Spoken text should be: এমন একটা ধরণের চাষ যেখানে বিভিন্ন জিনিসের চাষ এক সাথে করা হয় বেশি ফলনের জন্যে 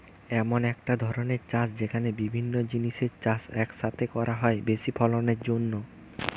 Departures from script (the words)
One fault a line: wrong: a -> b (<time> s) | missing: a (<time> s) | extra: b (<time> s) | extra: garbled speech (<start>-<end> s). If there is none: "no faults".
no faults